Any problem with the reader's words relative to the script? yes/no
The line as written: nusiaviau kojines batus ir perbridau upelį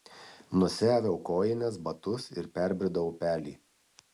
no